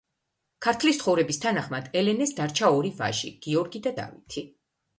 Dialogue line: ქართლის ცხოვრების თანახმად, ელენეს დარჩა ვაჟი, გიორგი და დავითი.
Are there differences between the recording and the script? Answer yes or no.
yes